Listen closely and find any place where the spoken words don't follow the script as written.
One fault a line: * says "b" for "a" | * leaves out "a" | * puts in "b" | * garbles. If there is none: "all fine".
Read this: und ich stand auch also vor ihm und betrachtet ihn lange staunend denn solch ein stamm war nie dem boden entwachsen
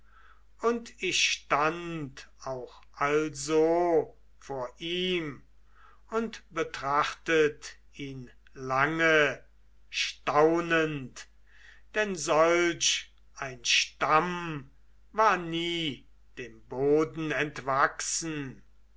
all fine